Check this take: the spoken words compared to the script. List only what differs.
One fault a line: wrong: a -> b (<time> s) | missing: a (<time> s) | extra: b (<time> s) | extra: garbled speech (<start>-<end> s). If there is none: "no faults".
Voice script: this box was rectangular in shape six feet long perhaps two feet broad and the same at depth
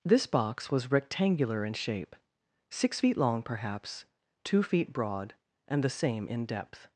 wrong: at -> in (6.3 s)